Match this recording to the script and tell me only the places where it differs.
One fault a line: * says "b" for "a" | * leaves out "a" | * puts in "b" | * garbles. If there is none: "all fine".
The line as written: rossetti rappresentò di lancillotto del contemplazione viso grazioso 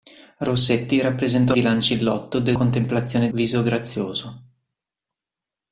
all fine